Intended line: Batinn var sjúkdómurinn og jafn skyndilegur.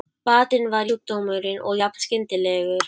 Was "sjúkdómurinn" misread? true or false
false